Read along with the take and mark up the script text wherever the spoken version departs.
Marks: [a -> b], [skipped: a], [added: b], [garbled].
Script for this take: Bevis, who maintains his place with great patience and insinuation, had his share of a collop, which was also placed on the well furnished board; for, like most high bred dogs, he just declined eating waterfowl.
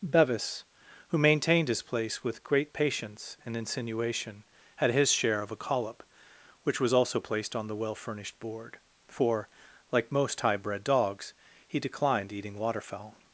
Bevis, who [maintains -> maintained] his place with great patience and insinuation, had his share of a collop, which was also placed on the well furnished board; for, like most high bred dogs, he [skipped: just] declined eating waterfowl.